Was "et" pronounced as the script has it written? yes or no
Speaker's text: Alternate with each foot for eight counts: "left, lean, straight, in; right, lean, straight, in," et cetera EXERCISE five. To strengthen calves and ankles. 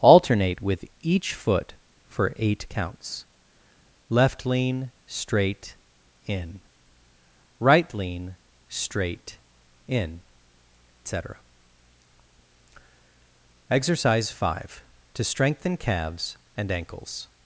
no